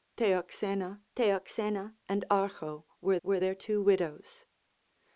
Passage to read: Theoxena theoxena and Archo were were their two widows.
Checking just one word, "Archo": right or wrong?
right